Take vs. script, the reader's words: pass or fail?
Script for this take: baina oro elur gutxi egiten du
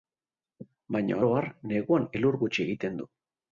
fail